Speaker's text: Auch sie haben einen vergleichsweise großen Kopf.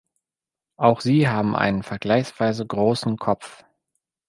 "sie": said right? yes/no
yes